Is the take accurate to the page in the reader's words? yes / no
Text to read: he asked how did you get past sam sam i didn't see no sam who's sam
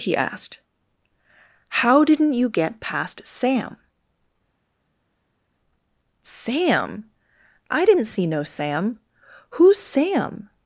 no